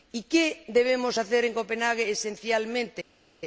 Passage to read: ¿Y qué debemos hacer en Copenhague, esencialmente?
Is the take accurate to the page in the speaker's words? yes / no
yes